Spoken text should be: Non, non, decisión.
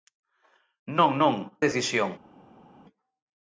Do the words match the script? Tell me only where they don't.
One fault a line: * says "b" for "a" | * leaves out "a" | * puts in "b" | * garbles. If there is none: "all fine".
all fine